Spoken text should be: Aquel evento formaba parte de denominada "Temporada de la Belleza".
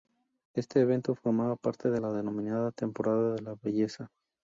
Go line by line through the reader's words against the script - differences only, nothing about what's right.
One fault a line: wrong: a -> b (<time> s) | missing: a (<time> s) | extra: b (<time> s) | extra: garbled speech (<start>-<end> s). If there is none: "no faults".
wrong: Aquel -> Este (0.6 s)
extra: la (2.0 s)